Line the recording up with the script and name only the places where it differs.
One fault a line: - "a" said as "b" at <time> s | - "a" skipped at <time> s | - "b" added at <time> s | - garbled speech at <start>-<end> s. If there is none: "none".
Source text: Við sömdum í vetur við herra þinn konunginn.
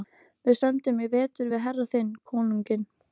none